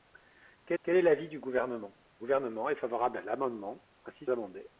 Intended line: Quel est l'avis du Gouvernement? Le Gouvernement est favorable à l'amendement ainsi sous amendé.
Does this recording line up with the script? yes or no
no